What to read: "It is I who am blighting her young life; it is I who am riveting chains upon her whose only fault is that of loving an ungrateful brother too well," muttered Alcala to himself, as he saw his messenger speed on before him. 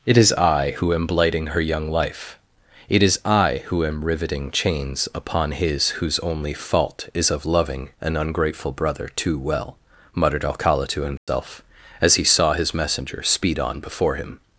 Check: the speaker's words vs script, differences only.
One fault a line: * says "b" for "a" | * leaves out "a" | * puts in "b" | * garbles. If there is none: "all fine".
* says "his" for "her"
* leaves out "that"